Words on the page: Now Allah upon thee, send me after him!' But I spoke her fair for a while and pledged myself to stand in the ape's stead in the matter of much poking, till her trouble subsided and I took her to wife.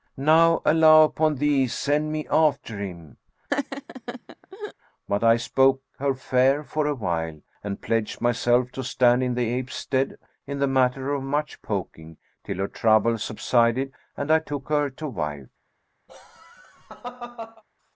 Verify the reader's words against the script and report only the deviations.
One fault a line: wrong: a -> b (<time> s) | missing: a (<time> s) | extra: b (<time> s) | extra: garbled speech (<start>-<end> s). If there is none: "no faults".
no faults